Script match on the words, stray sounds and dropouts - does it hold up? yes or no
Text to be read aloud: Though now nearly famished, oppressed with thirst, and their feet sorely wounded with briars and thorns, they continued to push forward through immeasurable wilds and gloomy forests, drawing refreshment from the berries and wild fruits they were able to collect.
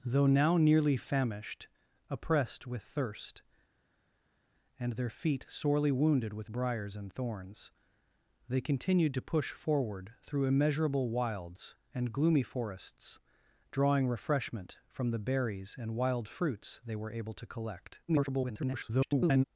no